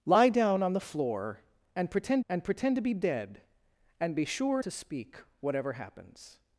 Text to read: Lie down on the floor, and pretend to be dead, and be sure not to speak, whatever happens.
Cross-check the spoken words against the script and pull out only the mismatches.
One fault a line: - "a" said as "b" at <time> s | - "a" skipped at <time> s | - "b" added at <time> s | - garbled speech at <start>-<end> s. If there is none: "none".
- "and pretend" added at 2.3 s
- "not" skipped at 4.6 s